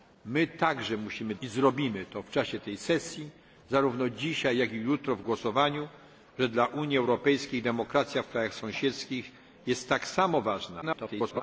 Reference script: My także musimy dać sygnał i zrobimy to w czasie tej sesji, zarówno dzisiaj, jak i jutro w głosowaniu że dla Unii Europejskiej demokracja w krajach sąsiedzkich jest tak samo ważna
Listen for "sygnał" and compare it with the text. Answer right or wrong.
wrong